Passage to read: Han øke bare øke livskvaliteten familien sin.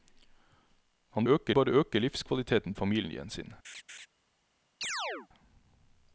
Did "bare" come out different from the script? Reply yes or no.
no